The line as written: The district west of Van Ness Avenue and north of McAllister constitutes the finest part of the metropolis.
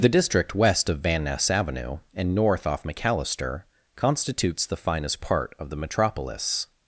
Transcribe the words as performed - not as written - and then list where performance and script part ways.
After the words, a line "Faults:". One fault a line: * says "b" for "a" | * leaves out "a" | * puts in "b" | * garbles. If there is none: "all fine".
The district west of Van Ness Avenue and north off McAllister constitutes the finest part of the metropolis.
Faults:
* says "off" for "of"